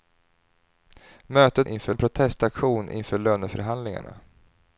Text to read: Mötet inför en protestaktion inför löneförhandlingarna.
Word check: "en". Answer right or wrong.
right